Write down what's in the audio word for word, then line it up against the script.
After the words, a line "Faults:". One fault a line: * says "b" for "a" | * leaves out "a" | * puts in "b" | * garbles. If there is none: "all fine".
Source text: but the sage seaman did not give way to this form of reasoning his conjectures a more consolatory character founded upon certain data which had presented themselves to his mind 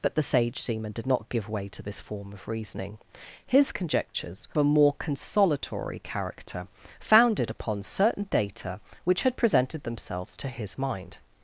but the sage seaman did not give way to this form of reasoning his conjectures a more consolatory character founded upon certain data which had presented themselves to his mind
Faults:
all fine